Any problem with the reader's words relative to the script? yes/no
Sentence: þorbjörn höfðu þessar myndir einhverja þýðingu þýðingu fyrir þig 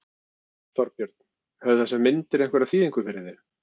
yes